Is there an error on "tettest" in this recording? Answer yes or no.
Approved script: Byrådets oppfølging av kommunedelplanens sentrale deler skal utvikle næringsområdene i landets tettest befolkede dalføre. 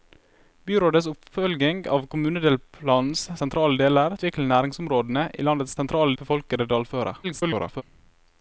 yes